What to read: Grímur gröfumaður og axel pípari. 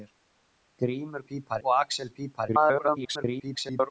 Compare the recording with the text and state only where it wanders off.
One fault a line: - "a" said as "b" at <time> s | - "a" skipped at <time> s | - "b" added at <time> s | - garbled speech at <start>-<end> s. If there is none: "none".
- "gröfumaður" said as "pípari" at 1.2 s
- garbled speech at 2.5-3.9 s